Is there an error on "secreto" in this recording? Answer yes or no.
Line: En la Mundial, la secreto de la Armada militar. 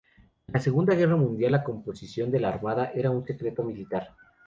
yes